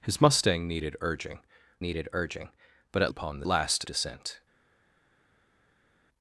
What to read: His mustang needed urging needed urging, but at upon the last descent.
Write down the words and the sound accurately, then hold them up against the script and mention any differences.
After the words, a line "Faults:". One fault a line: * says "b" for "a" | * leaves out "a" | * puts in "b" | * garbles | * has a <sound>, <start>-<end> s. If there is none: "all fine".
His mustang needed urging needed urging, but at upon the last descent.
Faults:
all fine